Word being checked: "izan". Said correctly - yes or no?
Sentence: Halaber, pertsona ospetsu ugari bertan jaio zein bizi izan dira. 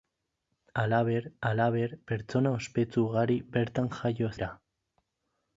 no